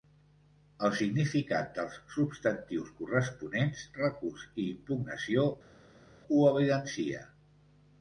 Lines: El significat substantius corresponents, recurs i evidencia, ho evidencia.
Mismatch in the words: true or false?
true